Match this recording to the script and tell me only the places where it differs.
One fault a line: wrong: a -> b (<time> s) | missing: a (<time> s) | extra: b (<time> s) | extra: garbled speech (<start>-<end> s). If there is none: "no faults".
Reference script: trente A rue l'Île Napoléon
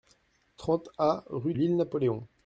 no faults